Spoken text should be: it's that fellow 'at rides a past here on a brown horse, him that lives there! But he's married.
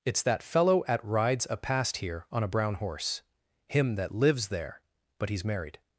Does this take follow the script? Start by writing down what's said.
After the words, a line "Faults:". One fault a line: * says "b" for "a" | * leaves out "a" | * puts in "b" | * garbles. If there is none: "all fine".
it's that fellow 'at rides a past here on a brown horse, him that lives there! But he's married.
Faults:
all fine